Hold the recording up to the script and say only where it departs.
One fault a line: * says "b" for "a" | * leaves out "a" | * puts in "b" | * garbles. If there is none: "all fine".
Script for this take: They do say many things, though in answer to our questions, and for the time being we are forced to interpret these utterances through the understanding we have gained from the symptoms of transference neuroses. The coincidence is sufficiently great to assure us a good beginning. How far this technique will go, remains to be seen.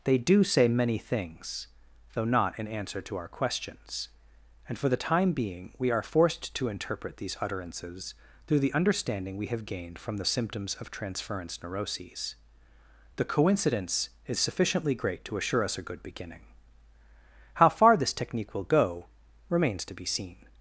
* puts in "not"